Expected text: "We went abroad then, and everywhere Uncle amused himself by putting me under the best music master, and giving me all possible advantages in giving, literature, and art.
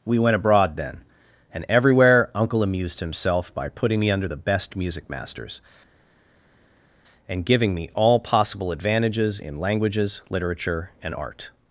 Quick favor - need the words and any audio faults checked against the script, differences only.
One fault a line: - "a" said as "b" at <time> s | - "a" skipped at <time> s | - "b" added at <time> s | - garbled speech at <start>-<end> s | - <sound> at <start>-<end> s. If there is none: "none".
- "master" said as "masters" at 5.1 s
- "giving" said as "languages" at 9.6 s